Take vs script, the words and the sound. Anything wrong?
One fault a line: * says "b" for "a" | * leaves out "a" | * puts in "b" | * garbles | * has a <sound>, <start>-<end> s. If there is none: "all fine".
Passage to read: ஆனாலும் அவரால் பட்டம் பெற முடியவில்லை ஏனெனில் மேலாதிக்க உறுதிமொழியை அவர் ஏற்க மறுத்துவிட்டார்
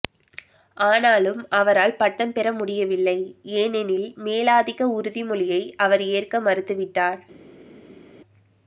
all fine